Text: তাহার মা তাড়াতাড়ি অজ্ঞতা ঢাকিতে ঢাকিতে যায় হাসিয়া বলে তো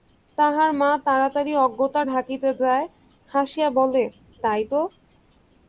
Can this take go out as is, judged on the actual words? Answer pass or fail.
fail